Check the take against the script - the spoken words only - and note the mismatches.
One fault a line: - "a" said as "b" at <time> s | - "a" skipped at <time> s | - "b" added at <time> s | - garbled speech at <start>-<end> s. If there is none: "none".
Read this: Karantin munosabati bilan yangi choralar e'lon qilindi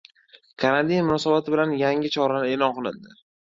none